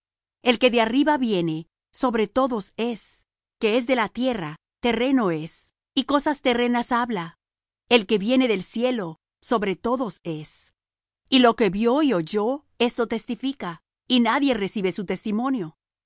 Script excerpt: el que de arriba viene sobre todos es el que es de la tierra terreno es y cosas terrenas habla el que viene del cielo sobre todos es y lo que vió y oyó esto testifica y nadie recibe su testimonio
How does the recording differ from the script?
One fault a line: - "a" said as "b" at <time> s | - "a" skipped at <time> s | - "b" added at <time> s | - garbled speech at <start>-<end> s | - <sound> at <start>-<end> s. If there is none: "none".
- "el" skipped at 3.2 s